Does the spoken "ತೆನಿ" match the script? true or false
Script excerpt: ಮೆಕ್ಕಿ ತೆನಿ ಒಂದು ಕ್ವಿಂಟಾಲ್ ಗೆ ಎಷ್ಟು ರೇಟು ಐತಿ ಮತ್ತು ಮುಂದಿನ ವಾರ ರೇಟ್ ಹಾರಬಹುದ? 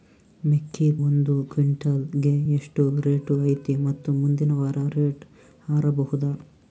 false